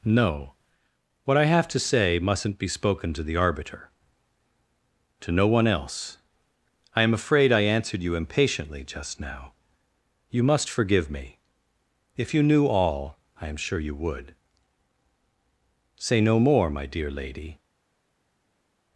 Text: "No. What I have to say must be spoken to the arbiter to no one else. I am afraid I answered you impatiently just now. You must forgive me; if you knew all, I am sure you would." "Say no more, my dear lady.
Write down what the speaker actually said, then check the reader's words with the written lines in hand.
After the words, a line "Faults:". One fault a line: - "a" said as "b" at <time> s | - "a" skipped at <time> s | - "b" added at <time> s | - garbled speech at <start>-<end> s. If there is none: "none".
"No. What I have to say mustn't be spoken to the arbiter to no one else. I am afraid I answered you impatiently just now. You must forgive me; if you knew all, I am sure you would." "Say no more, my dear lady.
Faults:
- "must" said as "mustn't" at 2.2 s